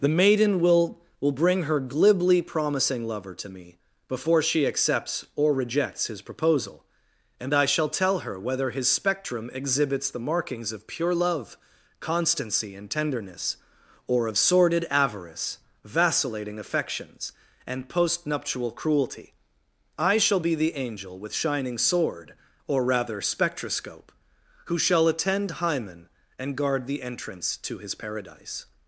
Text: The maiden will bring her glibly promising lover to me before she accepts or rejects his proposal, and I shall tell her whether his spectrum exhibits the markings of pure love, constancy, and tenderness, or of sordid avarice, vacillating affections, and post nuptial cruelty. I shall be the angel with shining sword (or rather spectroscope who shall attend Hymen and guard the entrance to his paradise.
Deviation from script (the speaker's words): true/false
true